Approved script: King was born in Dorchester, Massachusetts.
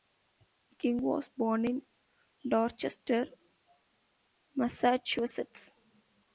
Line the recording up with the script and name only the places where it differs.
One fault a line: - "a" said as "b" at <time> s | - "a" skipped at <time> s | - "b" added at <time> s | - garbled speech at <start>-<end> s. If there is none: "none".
none